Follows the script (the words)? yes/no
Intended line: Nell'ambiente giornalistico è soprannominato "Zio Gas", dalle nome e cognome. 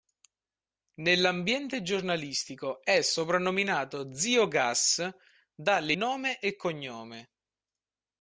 yes